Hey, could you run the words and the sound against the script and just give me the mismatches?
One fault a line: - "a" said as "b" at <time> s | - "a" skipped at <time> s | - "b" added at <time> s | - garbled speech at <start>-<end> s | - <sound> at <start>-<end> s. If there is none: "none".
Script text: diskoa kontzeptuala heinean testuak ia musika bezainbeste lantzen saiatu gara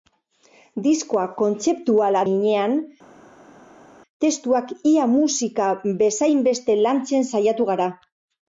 none